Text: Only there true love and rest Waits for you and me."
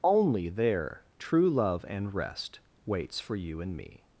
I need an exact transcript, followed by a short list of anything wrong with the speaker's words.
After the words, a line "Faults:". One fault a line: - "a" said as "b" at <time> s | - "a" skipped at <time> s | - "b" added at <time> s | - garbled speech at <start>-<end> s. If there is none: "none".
Only there true love and rest Waits for you and me."
Faults:
none